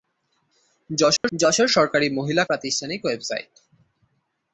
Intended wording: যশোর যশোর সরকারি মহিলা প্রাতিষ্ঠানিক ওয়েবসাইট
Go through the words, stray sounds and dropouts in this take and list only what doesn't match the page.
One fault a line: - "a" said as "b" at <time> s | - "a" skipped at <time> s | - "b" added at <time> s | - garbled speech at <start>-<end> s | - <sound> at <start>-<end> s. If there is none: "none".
- dropout at 1.2-1.2 s